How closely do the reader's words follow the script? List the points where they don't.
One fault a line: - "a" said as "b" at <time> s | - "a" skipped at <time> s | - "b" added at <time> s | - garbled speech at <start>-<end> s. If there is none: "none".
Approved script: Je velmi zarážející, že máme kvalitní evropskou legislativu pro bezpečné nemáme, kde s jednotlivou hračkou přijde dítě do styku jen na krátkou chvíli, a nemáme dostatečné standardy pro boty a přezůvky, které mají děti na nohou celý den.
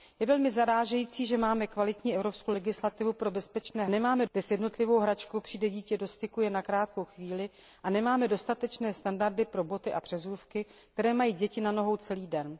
none